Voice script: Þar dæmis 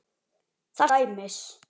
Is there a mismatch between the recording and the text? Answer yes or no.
no